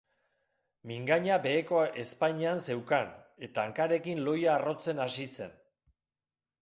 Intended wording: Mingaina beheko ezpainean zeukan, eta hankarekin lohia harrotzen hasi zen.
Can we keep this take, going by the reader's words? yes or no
yes